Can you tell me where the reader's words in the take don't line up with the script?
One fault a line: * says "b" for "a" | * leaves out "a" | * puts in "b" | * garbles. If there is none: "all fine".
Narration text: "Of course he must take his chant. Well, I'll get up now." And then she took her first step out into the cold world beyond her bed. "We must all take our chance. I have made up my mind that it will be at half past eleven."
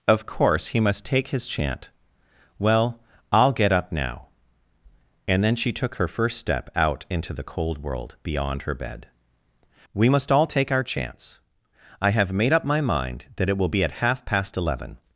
all fine